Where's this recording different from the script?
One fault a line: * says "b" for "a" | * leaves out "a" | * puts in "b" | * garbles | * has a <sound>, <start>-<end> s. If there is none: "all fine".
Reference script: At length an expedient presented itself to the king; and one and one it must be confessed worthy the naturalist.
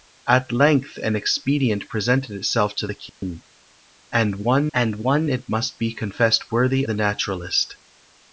* has a dropout, 3.1-3.2 s